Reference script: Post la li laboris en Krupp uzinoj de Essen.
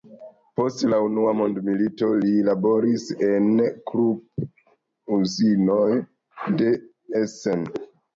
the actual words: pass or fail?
fail